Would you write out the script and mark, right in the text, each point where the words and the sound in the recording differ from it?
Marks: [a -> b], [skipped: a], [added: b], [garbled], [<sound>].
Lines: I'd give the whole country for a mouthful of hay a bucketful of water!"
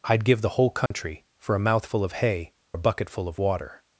I'd give the whole country [dropout] for a mouthful of hay a bucketful of water!"